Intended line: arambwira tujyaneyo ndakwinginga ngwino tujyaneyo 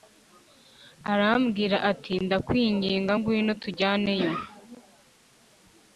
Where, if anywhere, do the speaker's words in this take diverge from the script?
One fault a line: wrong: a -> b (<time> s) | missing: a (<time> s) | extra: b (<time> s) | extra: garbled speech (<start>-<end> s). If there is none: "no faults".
wrong: tujyaneyo -> ati (1.9 s)